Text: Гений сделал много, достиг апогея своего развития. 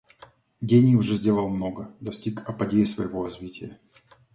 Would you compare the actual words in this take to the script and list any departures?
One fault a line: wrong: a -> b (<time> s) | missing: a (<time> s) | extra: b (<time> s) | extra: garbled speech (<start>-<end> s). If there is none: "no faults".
extra: уже (0.9 s)